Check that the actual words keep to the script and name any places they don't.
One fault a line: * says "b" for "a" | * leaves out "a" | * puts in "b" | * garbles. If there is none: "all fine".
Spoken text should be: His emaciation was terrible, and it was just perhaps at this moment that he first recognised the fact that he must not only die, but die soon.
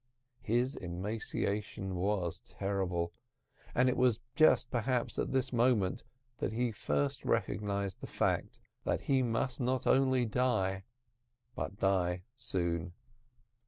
all fine